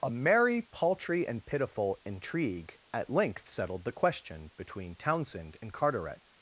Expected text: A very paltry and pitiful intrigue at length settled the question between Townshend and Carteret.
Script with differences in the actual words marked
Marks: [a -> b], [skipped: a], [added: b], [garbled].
A [very -> merry] paltry and pitiful intrigue at length settled the question between Townshend and Carteret.